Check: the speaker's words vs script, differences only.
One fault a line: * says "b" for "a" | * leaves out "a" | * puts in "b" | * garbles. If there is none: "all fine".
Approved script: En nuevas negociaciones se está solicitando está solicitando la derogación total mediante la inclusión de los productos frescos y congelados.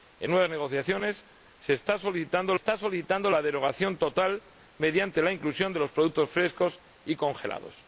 all fine